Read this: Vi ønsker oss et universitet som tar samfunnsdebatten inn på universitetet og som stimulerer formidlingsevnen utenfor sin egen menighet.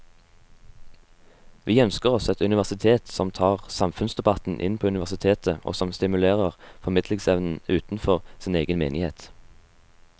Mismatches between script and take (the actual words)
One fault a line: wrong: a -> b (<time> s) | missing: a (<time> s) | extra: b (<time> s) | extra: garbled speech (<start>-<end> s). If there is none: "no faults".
no faults